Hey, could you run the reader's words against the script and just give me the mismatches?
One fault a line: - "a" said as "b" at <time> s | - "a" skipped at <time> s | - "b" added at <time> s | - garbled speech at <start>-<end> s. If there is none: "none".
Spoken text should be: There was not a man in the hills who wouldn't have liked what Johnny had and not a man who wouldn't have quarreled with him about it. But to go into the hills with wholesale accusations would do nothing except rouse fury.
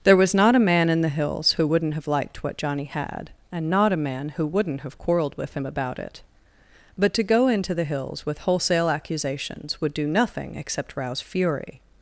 none